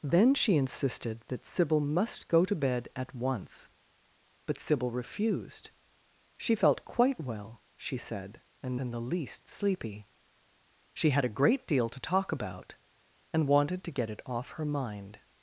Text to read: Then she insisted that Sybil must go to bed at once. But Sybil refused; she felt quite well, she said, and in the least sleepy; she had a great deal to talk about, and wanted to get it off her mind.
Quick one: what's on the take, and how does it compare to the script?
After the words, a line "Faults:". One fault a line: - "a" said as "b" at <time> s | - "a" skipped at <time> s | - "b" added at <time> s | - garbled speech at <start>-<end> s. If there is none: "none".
Then she insisted that Sybil must go to bed at once. But Sybil refused; she felt quite well, she said, and in the least sleepy; she had a great deal to talk about, and wanted to get it off her mind.
Faults:
none